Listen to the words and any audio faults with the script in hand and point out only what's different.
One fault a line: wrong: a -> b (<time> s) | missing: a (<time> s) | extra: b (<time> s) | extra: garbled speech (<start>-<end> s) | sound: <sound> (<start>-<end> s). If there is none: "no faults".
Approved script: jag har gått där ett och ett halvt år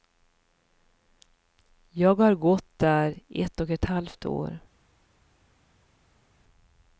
no faults